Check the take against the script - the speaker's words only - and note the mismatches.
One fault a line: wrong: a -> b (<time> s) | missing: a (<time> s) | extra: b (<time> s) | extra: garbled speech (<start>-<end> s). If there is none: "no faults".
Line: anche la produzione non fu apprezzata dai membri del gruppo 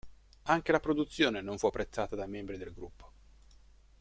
no faults